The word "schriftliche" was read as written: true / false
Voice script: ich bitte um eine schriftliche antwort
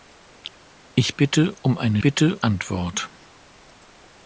false